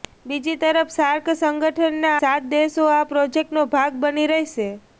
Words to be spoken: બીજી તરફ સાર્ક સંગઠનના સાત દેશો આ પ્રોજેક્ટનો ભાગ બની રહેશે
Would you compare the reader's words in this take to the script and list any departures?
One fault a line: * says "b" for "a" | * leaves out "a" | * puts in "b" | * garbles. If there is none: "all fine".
all fine